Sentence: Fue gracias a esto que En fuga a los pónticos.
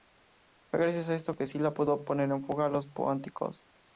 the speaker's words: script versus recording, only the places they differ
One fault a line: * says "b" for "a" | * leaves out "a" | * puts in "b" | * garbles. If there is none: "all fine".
* puts in "Sila pudo poner"